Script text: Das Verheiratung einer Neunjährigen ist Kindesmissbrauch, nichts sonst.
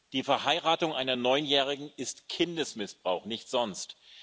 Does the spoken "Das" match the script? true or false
false